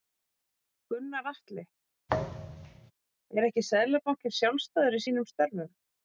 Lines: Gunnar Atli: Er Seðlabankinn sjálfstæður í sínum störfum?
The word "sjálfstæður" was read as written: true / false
true